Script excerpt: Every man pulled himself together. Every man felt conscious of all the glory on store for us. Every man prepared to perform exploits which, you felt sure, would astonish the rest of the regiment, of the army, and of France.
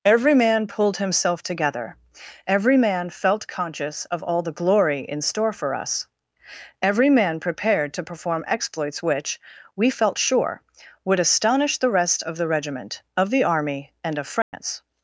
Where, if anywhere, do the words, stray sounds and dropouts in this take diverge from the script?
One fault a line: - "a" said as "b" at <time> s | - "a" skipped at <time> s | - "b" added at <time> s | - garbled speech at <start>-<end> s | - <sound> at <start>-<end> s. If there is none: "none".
- "on" said as "in" at 5.0 s
- "you" said as "we" at 9.8 s
- dropout at 14.4-14.5 s